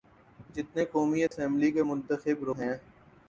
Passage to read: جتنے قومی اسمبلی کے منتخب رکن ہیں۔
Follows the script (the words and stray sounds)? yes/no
no